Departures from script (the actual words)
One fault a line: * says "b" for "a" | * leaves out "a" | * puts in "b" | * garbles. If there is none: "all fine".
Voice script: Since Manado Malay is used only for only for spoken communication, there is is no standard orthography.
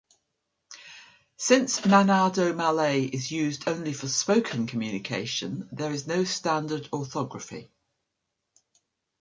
* leaves out "only for"
* leaves out "is"